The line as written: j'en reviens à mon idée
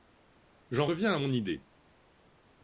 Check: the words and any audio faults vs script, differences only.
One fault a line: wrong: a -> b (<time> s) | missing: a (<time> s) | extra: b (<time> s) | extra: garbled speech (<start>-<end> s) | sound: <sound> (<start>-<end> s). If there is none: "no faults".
no faults